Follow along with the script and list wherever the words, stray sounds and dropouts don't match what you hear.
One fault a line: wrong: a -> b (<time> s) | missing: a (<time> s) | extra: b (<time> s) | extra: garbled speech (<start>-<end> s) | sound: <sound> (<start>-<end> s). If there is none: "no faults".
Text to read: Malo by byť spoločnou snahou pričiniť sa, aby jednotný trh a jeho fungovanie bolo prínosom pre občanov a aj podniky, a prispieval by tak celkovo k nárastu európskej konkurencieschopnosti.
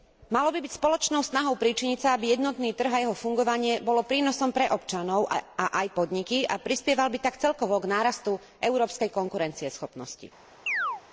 sound: chirp (10.7-11.0 s)